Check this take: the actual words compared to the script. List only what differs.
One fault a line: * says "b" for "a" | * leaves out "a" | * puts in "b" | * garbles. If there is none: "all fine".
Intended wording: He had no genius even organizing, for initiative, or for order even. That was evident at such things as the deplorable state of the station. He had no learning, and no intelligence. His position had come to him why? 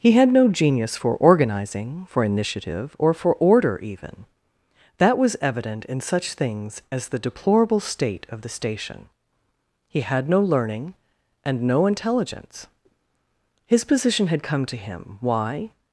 * says "for" for "even"
* says "in" for "at"